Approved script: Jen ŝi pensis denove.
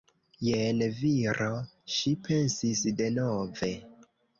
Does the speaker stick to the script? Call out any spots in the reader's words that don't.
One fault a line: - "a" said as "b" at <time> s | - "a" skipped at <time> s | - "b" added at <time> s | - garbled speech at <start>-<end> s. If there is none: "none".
- "viro" added at 1.0 s